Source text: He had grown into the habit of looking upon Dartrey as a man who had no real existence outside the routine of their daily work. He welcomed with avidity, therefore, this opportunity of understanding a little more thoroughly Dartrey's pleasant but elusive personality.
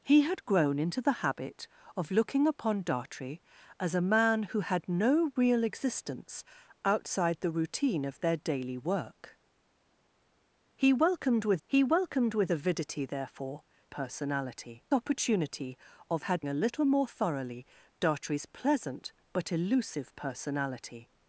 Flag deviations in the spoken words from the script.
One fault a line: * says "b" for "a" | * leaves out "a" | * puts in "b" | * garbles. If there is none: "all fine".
* puts in "he welcomed with"
* says "personality" for "this"
* says "had" for "understanding"